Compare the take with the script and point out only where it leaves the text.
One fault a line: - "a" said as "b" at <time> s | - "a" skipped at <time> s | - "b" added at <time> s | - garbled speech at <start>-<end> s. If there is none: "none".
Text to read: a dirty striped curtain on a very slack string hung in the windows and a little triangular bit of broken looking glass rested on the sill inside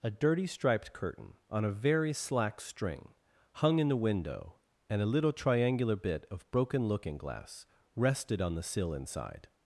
- "windows" said as "window" at 4.1 s